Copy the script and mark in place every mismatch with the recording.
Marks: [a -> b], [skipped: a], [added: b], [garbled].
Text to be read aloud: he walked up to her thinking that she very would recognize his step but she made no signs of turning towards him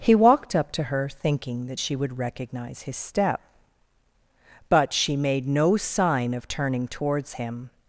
he walked up to her thinking that she [skipped: very] would recognize his step but she made no [signs -> sign] of turning towards him